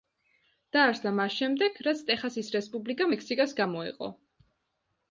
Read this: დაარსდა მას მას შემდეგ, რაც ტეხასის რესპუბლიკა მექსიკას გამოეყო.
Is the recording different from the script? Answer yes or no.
yes